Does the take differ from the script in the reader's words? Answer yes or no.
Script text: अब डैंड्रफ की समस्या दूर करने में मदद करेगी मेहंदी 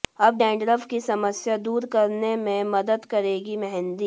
no